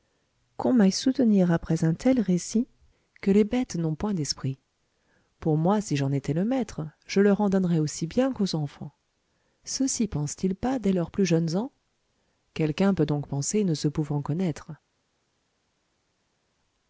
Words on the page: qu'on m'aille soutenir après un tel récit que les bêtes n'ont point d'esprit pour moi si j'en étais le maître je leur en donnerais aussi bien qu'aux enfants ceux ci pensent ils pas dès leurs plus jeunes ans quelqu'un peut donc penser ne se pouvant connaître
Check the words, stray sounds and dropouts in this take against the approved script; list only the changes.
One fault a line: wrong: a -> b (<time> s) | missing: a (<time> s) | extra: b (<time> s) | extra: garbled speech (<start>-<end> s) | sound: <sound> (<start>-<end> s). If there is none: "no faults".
no faults